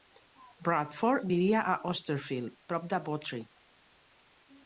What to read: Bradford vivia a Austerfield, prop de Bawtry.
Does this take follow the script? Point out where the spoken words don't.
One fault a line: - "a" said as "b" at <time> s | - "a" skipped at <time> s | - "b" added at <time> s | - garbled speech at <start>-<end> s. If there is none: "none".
none